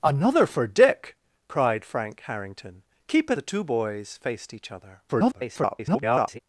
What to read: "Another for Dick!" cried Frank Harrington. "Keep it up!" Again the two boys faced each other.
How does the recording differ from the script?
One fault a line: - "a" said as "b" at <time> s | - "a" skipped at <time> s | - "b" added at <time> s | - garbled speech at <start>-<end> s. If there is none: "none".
- "up Again" skipped at 3.4 s
- garbled speech at 5.1-6.4 s